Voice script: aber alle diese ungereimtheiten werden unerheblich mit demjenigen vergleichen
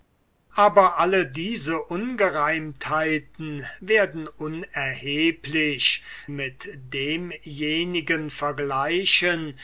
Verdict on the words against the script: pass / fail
pass